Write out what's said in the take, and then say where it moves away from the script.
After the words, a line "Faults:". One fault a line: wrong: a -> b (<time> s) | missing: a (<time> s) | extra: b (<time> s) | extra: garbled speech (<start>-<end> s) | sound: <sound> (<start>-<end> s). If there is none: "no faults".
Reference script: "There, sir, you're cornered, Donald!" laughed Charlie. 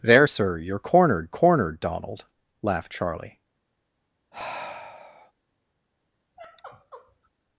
"There, sir, you're cornered cornered, Donald!" laughed Charlie.
Faults:
extra: cornered (1.3 s)
sound: sigh (4.3-5.3 s)
sound: sigh (6.4-7.3 s)